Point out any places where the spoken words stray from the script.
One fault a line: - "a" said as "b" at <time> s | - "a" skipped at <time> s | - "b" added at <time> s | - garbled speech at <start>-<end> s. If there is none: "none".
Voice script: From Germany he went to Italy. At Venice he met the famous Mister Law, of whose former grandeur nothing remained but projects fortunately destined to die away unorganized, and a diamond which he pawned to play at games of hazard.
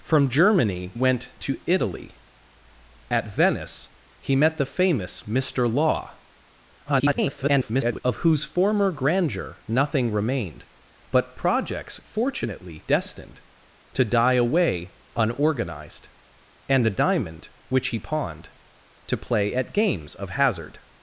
- "he" skipped at 0.9 s
- garbled speech at 6.9-8.0 s